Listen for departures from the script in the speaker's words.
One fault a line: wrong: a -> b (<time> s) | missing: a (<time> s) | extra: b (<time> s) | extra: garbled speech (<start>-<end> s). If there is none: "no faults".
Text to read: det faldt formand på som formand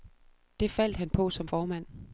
wrong: formand -> han (1.0 s)